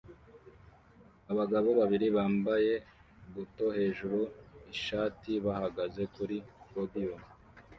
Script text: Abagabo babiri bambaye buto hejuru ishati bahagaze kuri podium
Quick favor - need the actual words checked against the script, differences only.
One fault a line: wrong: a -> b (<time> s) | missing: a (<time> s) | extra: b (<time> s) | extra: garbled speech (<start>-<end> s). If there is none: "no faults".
no faults